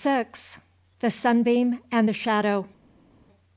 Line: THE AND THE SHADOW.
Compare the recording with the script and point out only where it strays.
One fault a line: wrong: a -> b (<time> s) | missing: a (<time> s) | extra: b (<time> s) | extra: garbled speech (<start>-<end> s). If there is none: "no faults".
extra: SUNBEAM (1.1 s)